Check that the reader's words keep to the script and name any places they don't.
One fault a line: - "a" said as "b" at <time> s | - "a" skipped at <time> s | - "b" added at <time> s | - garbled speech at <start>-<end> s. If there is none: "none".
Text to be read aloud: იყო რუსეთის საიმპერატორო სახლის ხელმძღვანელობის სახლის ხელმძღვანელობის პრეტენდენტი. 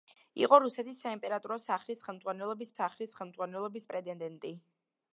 none